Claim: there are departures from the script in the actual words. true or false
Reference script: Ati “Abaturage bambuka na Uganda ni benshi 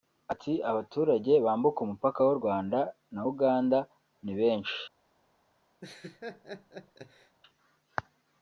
true